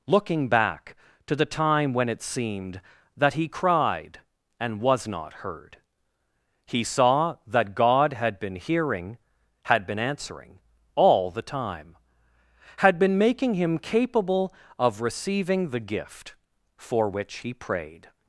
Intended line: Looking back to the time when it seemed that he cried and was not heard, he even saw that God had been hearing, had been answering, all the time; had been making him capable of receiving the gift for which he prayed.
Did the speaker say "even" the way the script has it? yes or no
no